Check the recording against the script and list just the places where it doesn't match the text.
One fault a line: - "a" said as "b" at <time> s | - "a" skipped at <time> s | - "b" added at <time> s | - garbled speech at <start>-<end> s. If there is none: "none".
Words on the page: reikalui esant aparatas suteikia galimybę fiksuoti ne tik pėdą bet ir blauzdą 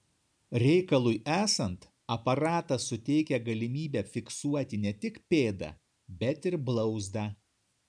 none